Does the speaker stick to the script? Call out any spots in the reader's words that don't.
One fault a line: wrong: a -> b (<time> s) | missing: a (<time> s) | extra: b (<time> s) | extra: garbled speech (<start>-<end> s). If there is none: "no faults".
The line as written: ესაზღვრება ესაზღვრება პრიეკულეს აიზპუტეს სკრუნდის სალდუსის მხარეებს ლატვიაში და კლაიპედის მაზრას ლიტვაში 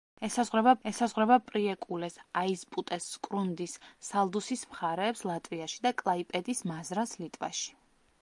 no faults